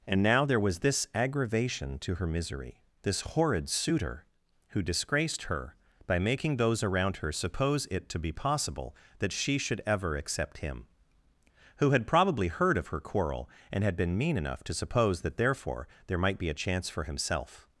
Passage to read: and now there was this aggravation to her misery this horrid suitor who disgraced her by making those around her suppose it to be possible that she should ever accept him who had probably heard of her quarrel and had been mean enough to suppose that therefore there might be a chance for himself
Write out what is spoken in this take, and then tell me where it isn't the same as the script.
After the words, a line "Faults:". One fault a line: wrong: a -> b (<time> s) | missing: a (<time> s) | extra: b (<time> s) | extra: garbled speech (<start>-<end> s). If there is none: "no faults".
and now there was this aggravation to her misery this horrid suitor who disgraced her by making those around her suppose it to be possible that she should ever accept him who had probably heard of her quarrel and had been mean enough to suppose that therefore there might be a chance for himself
Faults:
no faults